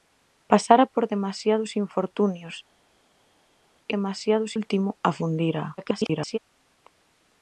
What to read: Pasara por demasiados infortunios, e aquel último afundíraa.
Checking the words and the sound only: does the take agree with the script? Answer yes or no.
no